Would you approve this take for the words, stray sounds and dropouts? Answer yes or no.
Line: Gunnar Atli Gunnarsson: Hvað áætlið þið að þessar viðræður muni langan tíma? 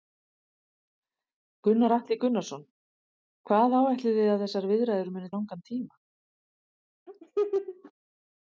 no